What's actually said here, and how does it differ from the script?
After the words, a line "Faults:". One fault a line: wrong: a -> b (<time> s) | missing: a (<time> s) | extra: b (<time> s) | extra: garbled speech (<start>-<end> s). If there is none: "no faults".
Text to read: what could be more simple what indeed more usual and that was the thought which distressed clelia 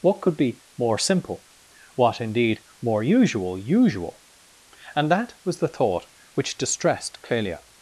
what could be more simple what indeed more usual usual and that was the thought which distressed clelia
Faults:
extra: usual (3.6 s)